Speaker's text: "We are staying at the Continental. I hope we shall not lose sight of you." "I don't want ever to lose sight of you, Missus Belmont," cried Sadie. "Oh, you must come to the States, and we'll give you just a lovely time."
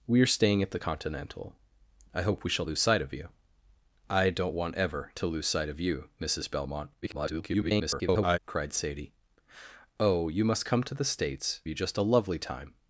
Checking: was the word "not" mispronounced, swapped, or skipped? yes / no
yes